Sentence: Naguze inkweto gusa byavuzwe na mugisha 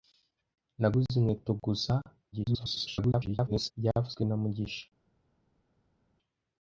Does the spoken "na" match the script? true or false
true